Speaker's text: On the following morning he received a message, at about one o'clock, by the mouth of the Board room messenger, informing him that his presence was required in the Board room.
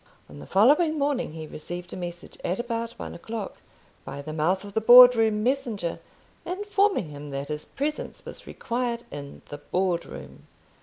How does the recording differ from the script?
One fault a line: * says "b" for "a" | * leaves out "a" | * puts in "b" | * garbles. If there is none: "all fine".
all fine